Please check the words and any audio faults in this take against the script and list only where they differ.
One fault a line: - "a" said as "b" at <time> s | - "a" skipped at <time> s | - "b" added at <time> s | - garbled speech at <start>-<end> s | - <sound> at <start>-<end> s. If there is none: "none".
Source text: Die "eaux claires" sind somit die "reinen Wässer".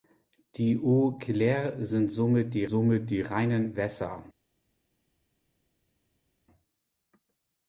- "somit die" added at 2.6 s